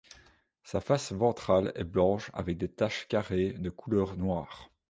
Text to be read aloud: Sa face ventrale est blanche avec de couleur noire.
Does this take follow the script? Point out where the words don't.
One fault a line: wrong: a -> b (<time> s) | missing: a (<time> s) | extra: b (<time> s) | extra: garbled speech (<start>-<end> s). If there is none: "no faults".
extra: des taches carrées (2.6 s)